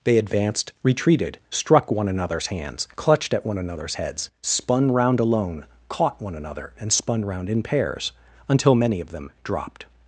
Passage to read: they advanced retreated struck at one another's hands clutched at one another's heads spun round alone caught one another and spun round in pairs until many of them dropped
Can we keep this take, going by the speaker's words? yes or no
no